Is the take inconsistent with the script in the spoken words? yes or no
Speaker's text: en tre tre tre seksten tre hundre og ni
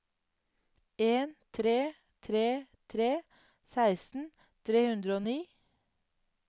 no